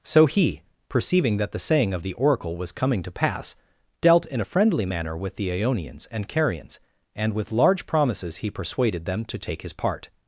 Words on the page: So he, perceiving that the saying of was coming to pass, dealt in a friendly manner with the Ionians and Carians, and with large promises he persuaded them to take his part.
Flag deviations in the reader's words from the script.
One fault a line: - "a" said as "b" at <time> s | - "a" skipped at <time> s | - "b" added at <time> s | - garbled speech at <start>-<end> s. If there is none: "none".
- "the Oracle" added at 2.0 s